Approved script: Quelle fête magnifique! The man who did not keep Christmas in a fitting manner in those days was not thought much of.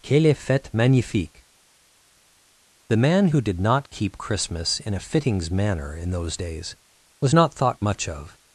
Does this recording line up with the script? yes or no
no